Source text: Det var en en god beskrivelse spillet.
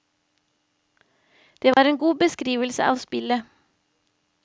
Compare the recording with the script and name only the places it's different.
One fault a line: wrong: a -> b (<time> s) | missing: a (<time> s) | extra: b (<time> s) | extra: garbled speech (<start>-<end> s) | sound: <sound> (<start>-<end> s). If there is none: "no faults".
sound: dropout (1.7-1.8 s)
missing: en (2.0 s)
extra: av (2.8 s)